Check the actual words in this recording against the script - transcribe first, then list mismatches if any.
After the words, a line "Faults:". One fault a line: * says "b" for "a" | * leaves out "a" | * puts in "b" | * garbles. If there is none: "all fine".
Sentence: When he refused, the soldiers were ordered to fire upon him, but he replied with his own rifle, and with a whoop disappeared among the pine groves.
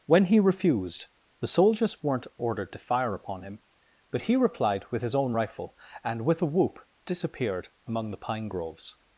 When he refused, the soldiers weren't ordered to fire upon him, but he replied with his own rifle, and with a whoop disappeared among the pine groves.
Faults:
* says "weren't" for "were"